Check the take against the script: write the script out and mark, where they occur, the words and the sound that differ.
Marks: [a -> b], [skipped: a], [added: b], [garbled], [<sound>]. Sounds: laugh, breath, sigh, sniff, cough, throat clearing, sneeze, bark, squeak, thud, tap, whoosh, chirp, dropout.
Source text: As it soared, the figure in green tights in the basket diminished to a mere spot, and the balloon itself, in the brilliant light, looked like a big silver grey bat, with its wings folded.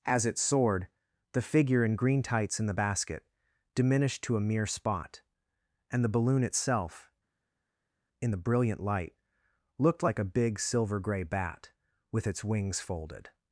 As it soared, the figure in green tights in the basket diminished to a mere spot, and the balloon itself, in the brilliant light, looked like a big silver grey bat, with its wings folded.